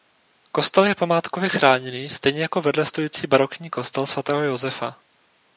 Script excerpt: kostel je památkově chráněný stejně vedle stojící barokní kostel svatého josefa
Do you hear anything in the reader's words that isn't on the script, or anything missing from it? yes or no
yes